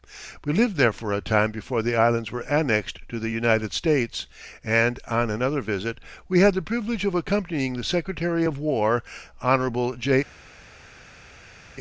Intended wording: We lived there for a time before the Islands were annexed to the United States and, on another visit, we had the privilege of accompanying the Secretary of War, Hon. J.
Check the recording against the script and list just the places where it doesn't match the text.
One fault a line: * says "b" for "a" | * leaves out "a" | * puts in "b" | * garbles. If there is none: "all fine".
all fine